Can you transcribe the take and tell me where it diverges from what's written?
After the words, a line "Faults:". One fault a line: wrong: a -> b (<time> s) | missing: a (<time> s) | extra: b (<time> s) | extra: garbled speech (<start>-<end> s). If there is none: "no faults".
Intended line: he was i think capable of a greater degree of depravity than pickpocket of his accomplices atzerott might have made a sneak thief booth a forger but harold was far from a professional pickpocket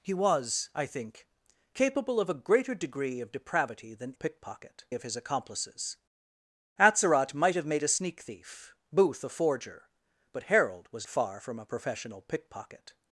he was i think capable of a greater degree of depravity than pickpocket of his accomplices atzerott might have made a sneak thief booth a forger but harold was far from a professional pickpocket
Faults:
no faults